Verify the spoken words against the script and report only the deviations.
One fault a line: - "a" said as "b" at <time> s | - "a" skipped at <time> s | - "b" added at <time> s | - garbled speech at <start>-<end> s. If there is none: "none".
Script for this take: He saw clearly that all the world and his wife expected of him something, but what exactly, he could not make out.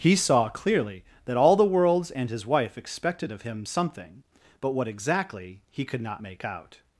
- "world" said as "worlds" at 1.6 s